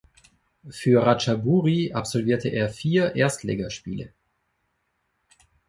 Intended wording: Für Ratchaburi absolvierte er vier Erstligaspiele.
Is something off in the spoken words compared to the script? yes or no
no